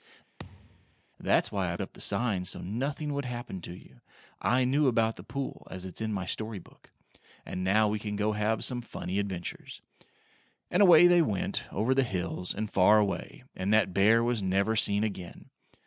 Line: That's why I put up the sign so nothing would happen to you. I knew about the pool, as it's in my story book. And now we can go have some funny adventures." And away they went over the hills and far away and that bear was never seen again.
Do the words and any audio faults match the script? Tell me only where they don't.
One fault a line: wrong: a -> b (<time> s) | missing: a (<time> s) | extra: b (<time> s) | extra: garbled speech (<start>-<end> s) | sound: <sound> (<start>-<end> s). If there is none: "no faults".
sound: thud (0.4-1.0 s)
missing: put (1.8 s)